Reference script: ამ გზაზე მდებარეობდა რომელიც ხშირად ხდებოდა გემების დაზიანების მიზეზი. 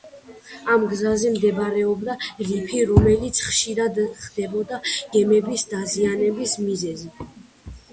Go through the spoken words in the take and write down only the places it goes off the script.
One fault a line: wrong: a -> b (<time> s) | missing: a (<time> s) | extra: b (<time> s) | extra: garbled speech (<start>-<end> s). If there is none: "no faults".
extra: რიფი (2.5 s)